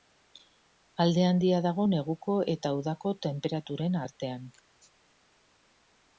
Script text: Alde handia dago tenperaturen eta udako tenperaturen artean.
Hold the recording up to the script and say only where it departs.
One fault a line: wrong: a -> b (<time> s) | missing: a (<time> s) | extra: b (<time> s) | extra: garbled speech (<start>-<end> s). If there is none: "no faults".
wrong: tenperaturen -> neguko (1.9 s)